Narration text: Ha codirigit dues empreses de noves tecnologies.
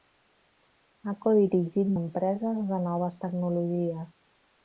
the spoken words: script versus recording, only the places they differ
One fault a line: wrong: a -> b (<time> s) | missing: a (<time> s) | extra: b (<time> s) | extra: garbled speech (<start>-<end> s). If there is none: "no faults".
missing: dues (1.9 s)